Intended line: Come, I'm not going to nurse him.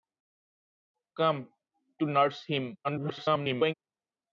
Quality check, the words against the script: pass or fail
fail